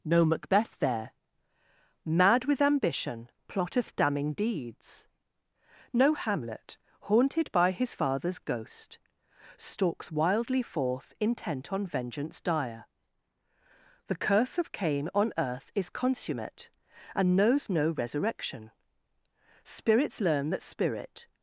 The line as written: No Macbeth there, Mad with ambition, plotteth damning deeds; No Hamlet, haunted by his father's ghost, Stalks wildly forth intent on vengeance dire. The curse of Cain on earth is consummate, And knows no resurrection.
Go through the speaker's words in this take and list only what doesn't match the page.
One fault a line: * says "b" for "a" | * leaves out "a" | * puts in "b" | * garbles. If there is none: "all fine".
* puts in "Spirits learn That spirit"